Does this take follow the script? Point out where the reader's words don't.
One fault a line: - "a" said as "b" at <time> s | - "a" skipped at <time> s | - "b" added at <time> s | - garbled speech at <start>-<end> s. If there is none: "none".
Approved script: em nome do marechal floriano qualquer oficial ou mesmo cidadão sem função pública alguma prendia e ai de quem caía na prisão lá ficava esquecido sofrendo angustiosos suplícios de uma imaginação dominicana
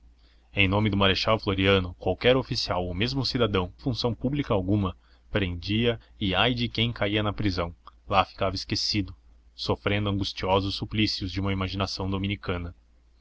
- "sem" skipped at 3.7 s